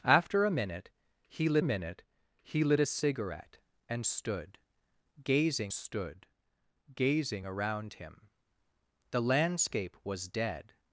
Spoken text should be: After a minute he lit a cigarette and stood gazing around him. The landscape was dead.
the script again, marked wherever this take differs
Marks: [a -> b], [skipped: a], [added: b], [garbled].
After a minute he lit [added: minute he lit] a cigarette and stood gazing [added: stood gazing] around him. The landscape was dead.